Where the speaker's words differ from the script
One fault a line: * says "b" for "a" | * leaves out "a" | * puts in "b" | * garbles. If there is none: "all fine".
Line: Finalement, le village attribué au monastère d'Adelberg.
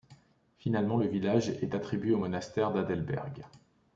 * puts in "est"